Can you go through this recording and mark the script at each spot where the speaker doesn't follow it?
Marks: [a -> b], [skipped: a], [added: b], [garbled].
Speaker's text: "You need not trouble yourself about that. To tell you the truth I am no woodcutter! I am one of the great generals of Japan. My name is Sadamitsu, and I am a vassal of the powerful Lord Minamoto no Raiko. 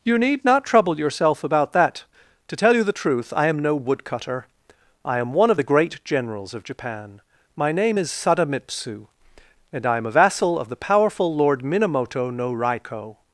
"You need not trouble yourself about that. To tell you the truth I am no woodcutter! I am one of the great generals of Japan. My name is Sadamitsu, and I am a vassal of the powerful Lord Minamoto no Raiko.